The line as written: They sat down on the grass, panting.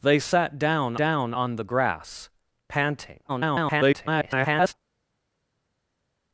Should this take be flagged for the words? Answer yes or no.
yes